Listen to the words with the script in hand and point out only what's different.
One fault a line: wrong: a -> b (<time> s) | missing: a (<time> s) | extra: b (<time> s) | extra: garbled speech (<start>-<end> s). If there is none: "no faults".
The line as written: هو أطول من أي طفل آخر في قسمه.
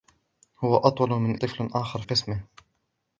missing: أي (1.4 s)
missing: في (2.0 s)